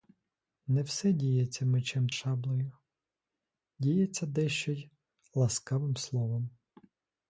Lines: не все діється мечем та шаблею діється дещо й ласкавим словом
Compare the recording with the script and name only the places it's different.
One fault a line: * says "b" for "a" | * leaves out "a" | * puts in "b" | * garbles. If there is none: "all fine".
* leaves out "та"